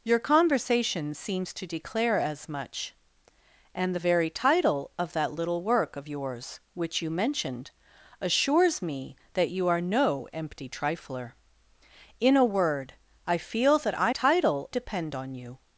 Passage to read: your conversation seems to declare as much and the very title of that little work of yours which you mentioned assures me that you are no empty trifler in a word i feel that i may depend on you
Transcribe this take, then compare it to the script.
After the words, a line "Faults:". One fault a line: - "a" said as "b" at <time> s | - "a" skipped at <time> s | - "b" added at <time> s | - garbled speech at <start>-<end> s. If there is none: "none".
your conversation seems to declare as much and the very title of that little work of yours which you mentioned assures me that you are no empty trifler in a word i feel that i title depend on you
Faults:
- "may" said as "title" at 14.1 s